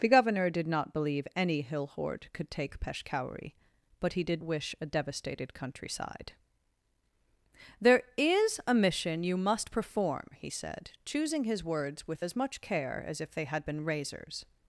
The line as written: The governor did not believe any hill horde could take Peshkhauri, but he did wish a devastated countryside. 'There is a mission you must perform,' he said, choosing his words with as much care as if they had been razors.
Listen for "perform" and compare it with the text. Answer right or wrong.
right